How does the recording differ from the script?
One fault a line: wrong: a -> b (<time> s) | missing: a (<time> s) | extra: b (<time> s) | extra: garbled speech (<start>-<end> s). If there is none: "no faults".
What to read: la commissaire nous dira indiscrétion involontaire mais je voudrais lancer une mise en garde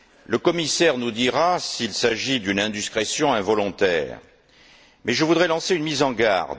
wrong: la -> le (0.2 s)
extra: s'il s'agit d'une (1.6 s)